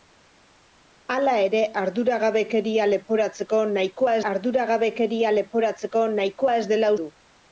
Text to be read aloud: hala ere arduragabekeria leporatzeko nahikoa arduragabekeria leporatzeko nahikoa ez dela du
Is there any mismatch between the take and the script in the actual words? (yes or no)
no